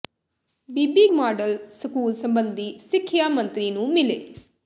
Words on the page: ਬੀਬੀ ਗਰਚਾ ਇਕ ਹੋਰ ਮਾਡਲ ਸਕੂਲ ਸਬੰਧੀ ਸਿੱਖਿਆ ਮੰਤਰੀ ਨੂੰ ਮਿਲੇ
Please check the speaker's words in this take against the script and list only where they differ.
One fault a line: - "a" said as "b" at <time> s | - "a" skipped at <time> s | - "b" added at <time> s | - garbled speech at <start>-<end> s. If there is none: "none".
- "ਗਰਚਾ ਇਕ ਹੋਰ" skipped at 1.1 s